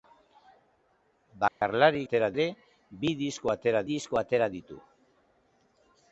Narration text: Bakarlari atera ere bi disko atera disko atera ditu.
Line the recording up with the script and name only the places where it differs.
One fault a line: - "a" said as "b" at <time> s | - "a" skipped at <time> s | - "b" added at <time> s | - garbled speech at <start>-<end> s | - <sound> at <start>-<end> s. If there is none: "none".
- dropout at 1.5-1.6 s